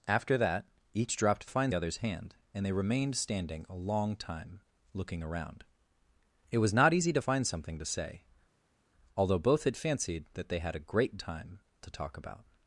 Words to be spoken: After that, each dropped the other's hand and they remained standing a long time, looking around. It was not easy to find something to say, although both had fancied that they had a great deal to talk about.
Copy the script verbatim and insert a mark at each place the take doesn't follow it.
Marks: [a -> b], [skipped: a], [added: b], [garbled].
After that, each dropped [the -> find] other's hand and they remained standing a long time, looking around. It was not easy to find something to say, although both had fancied that they had a great [deal -> time] to talk about.